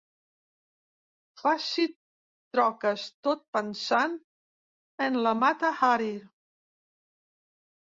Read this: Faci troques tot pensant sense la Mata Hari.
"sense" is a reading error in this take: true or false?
true